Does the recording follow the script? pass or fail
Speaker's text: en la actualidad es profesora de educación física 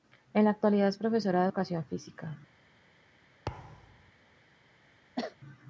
pass